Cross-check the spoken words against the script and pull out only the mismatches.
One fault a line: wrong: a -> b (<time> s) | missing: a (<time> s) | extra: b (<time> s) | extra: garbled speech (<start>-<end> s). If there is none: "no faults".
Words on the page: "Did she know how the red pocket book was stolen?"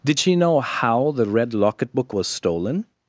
wrong: pocket -> locket (1.5 s)